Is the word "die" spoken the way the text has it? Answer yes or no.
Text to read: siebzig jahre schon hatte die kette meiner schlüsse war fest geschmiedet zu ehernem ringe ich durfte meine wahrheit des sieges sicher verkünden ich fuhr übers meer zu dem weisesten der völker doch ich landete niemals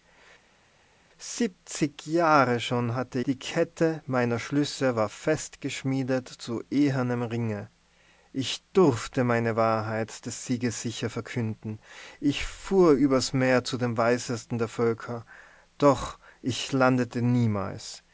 yes